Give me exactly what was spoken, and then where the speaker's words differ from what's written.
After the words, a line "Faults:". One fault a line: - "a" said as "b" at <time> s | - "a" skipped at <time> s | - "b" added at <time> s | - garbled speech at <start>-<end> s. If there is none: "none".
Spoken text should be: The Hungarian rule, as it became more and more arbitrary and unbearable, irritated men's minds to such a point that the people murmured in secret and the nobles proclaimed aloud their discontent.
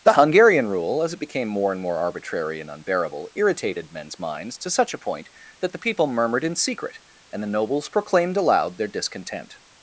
The Hungarian rule, as it became more and more arbitrary and unbearable, irritated men's minds to such a point that the people murmured in secret and the nobles proclaimed aloud their discontent.
Faults:
none